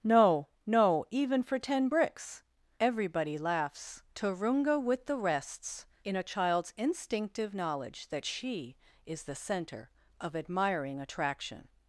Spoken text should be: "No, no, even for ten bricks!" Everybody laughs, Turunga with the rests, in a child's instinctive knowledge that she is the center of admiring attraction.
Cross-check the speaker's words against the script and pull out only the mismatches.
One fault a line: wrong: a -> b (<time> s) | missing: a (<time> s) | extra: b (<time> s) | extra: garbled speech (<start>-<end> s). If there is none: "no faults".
no faults